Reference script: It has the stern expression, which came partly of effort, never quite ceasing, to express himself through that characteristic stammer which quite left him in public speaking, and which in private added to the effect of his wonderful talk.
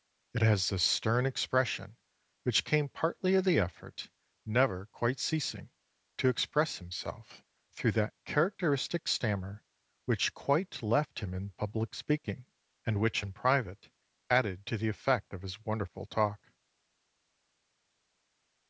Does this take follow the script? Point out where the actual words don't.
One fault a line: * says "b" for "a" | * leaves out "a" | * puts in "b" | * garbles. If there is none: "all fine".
* puts in "the"